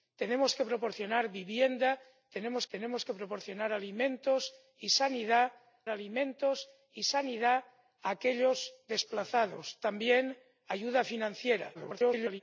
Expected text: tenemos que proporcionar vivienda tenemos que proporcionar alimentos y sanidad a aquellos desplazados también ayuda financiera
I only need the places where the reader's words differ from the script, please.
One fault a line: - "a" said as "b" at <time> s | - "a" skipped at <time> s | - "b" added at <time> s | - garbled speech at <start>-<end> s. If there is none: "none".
- "tenemos" added at 2.7 s
- "alimentos y sanidad" added at 5.9 s
- garbled speech at 11.7-12.4 s